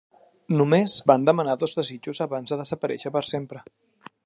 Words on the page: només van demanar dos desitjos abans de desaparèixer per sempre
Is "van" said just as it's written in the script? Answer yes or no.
yes